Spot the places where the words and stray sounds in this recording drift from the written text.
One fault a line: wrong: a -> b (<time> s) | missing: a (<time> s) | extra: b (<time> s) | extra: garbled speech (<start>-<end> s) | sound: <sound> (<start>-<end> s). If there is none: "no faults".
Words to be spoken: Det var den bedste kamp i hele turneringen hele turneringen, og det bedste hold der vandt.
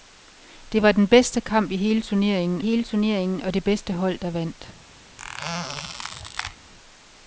sound: squeak (5.2-6.6 s)